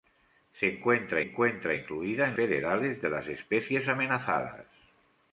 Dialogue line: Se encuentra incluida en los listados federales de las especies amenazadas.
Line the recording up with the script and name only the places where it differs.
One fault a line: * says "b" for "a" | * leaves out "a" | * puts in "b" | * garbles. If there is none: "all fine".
* puts in "encuentra"
* leaves out "los listados"